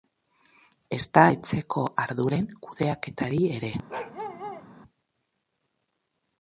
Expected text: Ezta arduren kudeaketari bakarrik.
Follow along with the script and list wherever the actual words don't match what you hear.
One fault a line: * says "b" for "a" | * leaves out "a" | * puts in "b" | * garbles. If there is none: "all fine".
* puts in "etxeko"
* says "ere" for "bakarrik"